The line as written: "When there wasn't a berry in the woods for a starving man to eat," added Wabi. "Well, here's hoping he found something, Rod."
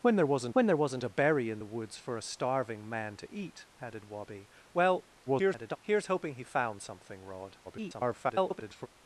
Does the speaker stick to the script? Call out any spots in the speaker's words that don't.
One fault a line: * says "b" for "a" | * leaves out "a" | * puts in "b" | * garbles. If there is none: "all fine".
* puts in "when there wasn't"
* garbles
* garbles